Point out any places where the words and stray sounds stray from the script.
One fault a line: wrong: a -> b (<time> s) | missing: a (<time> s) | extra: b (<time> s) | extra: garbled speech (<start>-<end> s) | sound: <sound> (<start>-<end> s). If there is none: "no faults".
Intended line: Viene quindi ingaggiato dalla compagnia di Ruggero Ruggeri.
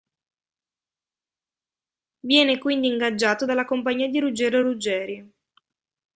no faults